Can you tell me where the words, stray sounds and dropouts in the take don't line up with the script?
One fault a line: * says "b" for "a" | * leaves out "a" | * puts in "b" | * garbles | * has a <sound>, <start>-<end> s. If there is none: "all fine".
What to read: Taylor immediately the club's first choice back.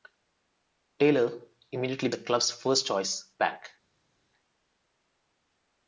all fine